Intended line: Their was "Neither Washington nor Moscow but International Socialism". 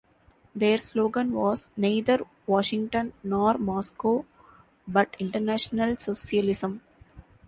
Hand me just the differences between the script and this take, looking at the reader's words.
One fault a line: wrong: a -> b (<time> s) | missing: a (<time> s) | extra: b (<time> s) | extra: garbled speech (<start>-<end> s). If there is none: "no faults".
extra: slogan (0.8 s)